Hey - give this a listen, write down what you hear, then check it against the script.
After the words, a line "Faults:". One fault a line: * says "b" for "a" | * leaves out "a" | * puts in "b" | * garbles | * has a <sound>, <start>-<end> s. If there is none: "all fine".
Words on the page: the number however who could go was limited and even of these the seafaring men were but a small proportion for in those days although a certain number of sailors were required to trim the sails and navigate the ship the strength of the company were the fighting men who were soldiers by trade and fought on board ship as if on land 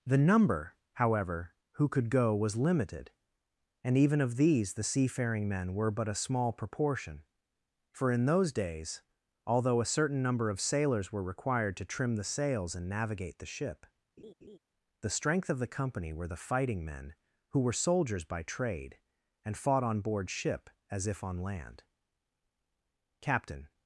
the number however who could go was limited and even of these the seafaring men were but a small proportion for in those days although a certain number of sailors were required to trim the sails and navigate the ship the strength of the company were the fighting men who were soldiers by trade and fought on board ship as if on land captain
Faults:
* has a laugh, 14.2-14.6 s
* puts in "captain"